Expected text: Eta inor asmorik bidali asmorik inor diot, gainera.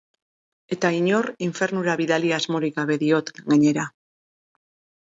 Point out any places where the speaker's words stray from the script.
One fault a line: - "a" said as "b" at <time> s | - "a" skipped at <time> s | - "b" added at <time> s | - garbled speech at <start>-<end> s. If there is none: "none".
- "asmorik" said as "infernura" at 1.5 s
- "inor" said as "gabe" at 2.8 s